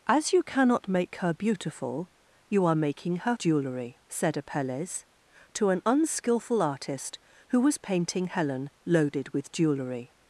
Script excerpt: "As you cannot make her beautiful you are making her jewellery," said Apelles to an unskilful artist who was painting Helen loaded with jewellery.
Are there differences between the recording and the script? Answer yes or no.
no